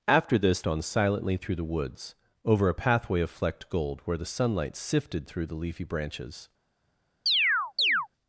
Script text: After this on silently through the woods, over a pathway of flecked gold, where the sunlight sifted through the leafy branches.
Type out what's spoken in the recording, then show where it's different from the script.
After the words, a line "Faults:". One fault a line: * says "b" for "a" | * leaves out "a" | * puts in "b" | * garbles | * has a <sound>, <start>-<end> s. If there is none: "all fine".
After this on silently through the woods, over a pathway of flecked gold, where the sunlight sifted through the leafy branches.
Faults:
* has a chirp, 7.3-8.1 s